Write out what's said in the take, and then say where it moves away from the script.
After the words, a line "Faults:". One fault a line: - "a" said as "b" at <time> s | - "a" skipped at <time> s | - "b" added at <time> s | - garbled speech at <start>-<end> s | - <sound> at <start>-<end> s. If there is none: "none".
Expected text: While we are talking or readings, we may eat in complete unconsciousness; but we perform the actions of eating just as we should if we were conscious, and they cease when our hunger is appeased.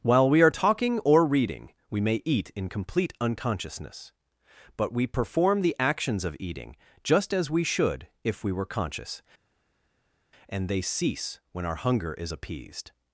While we are talking or reading, we may eat in complete unconsciousness; but we perform the actions of eating just as we should if we were conscious, and they cease when our hunger is appeased.
Faults:
- "readings" said as "reading" at 1.2 s